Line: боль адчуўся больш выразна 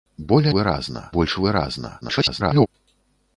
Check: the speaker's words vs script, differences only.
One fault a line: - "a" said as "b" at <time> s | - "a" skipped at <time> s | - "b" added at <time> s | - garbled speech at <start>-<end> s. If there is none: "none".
- "адчуўся" said as "выразна" at 0.6 s
- garbled speech at 2.0-2.7 s